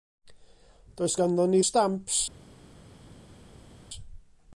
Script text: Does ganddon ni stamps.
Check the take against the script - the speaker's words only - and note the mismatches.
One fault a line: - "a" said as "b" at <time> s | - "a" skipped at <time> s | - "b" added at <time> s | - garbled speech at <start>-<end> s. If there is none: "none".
none